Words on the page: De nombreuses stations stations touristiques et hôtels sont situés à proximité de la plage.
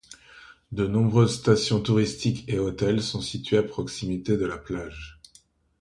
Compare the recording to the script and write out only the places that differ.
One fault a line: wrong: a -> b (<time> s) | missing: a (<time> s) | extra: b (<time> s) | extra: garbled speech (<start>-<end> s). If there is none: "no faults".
missing: stations (1.8 s)